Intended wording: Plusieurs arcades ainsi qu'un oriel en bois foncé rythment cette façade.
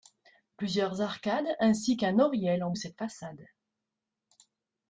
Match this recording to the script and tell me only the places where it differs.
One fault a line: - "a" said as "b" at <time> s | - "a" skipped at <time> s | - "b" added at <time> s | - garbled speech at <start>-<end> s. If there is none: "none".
- "bois foncé rythment" skipped at 2.7 s